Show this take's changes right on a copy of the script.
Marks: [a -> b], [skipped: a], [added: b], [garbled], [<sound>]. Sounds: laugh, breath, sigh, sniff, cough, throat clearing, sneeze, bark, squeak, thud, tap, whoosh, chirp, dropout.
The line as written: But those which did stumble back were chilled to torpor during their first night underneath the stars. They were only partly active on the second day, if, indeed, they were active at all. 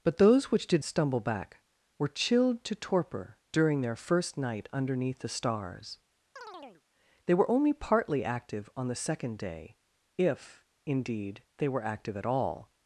But those which did stumble back were chilled to torpor during their first night underneath the stars. [chirp] They were only partly active on the second day, if, indeed, they were active at all.